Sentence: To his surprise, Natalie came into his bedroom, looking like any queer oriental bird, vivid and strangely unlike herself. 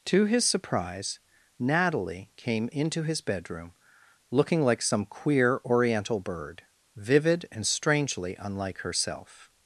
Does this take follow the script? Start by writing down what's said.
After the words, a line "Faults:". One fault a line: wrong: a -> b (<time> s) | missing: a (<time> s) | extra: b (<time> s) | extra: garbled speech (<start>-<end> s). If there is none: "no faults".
To his surprise, Natalie came into his bedroom, looking like some queer oriental bird, vivid and strangely unlike herself.
Faults:
wrong: any -> some (4.8 s)